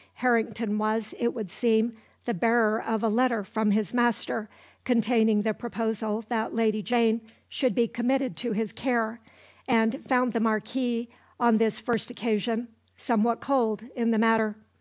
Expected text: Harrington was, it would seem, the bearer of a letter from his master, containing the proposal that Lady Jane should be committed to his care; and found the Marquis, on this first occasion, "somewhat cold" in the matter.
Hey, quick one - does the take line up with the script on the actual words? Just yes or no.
yes